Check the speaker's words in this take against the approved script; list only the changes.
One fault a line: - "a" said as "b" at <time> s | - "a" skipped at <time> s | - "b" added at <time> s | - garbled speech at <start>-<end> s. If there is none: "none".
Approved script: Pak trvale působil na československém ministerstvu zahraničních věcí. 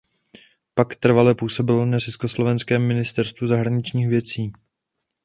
none